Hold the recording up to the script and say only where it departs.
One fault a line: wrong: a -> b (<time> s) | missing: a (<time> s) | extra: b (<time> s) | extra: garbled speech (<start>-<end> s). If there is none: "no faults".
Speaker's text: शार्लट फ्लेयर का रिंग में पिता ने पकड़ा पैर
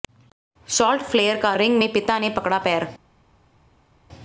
no faults